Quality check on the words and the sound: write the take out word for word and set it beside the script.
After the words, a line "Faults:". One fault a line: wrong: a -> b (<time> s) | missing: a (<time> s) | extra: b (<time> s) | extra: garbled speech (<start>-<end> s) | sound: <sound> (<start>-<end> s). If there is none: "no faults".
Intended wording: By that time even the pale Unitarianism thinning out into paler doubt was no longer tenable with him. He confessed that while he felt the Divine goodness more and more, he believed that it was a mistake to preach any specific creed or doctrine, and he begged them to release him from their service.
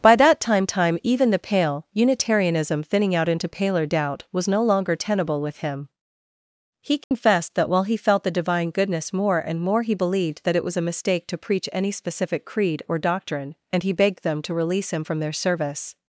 By that time time even the pale Unitarianism thinning out into paler doubt was no longer tenable with him. He confessed that while he felt the Divine goodness more and more, he believed that it was a mistake to preach any specific creed or doctrine, and he begged them to release him from their service.
Faults:
extra: time (0.7 s)
sound: dropout (7.0-7.1 s)